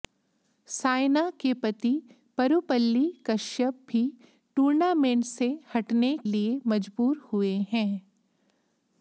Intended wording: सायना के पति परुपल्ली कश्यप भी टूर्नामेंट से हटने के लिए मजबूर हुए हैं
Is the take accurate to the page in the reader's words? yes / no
no